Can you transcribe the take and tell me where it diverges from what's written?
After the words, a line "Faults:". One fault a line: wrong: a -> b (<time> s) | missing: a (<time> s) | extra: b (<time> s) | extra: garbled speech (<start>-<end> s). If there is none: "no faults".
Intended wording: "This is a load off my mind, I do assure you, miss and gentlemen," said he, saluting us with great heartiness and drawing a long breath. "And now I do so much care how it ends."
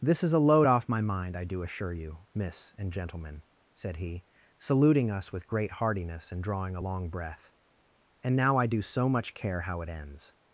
"This is a load off my mind, I do assure you, miss and gentlemen," said he, saluting us with great heartiness and drawing a long breath. "And now I do so much care how it ends."
Faults:
no faults